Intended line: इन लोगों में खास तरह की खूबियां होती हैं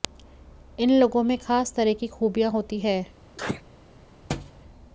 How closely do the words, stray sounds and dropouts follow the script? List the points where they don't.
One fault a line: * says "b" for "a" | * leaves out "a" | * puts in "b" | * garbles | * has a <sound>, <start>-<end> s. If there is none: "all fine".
* has a sneeze, 3.4-3.6 s
* has a thud, 4.3-4.6 s